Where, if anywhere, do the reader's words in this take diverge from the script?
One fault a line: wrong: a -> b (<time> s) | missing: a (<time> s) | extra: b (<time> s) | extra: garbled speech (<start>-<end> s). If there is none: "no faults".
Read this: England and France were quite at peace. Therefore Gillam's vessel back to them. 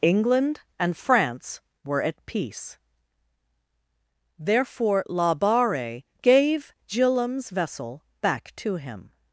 missing: quite (2.0 s)
extra: La Barre gave (5.1 s)
wrong: them -> him (8.8 s)